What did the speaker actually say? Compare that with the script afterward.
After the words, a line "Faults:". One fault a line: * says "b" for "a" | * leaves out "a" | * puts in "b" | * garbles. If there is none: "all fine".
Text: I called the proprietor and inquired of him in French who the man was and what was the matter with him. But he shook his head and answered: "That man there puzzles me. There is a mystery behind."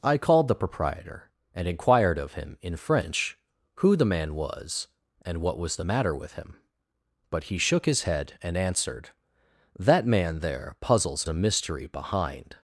I called the proprietor and inquired of him in French who the man was and what was the matter with him. But he shook his head and answered: "That man there puzzles a mystery behind."
Faults:
* leaves out "me There is"